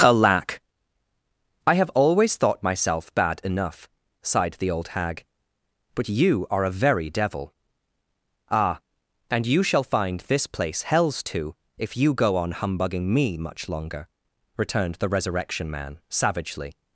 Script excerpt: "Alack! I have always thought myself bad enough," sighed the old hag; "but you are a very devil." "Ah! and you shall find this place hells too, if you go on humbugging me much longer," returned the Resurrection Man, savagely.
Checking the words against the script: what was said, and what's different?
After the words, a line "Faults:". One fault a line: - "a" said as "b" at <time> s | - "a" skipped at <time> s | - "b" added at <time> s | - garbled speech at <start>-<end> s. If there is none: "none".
"Alack! I have always thought myself bad enough," sighed the old hag; "but you are a very devil." "Ah! and you shall find this place hells too, if you go on humbugging me much longer," returned the Resurrection Man, savagely.
Faults:
none